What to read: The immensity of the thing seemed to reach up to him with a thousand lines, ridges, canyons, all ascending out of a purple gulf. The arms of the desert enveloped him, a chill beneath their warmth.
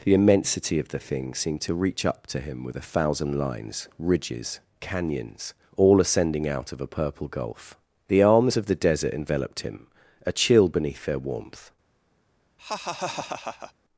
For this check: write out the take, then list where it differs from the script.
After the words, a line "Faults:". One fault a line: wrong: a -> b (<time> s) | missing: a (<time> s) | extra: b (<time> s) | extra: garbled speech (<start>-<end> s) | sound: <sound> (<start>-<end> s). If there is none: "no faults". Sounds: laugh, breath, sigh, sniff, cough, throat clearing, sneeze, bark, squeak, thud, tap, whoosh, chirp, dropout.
The immensity of the thing seemed to reach up to him with a thousand lines, ridges, canyons, all ascending out of a purple gulf. The arms of the desert enveloped him, a chill beneath their warmth.
Faults:
sound: laugh (12.6-13.7 s)